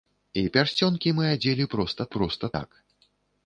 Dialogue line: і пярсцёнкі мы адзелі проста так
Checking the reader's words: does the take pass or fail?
fail